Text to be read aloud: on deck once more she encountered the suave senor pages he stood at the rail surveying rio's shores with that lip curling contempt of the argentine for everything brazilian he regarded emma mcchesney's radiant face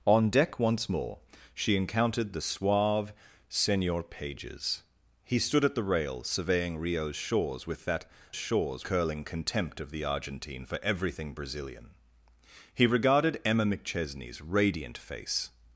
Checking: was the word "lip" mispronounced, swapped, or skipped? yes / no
yes